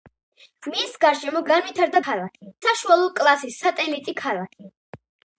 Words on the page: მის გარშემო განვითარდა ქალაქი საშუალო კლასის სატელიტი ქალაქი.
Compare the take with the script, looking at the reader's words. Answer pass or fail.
pass